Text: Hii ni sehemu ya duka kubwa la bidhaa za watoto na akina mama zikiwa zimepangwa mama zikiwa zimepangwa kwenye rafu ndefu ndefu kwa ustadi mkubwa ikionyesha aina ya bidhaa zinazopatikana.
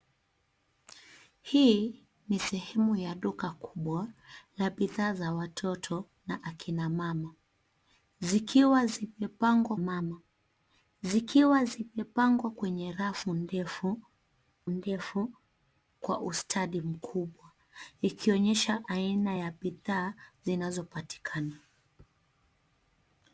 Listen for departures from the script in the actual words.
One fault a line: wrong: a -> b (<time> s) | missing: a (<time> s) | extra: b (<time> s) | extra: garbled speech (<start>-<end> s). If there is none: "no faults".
no faults